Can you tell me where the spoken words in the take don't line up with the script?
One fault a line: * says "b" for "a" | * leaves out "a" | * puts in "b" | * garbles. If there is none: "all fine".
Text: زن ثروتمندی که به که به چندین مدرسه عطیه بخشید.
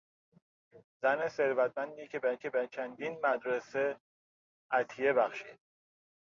all fine